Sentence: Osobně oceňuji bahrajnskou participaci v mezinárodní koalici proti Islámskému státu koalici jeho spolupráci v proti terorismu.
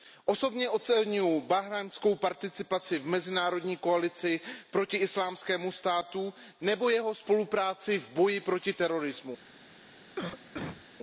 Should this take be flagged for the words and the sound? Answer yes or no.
yes